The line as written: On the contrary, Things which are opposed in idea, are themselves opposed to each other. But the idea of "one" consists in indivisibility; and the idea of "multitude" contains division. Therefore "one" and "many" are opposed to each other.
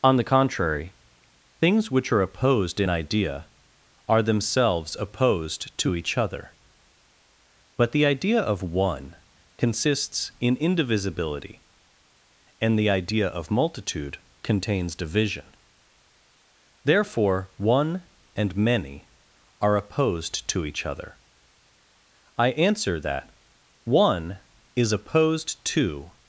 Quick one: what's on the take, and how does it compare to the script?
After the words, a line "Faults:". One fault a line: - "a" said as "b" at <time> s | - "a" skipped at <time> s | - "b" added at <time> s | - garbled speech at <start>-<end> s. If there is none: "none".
On the contrary, Things which are opposed in idea, are themselves opposed to each other. But the idea of "one" consists in indivisibility; and the idea of "multitude" contains division. Therefore "one" and "many" are opposed to each other. I answer that, "One" is opposed to
Faults:
- "I answer that One is opposed to" added at 22.4 s